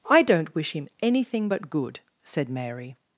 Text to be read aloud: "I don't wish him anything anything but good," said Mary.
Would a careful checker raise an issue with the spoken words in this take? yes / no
yes